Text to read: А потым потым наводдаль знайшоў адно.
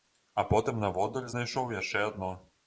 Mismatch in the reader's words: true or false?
true